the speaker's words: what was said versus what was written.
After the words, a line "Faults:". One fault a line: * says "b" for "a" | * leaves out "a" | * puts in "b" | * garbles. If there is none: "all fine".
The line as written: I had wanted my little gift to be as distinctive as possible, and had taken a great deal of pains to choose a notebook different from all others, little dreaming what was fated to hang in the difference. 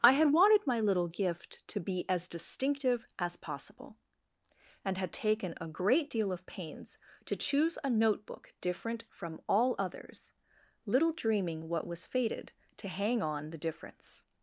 I had wanted my little gift to be as distinctive as possible, and had taken a great deal of pains to choose a notebook different from all others, little dreaming what was fated to hang on the difference.
Faults:
* says "on" for "in"